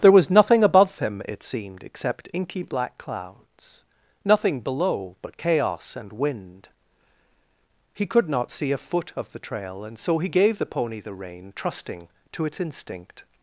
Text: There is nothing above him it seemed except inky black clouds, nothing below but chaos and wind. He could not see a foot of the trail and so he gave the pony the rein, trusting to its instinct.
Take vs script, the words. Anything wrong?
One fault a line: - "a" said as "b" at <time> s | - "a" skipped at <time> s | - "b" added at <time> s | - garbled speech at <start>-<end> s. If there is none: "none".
- "is" said as "was" at 0.1 s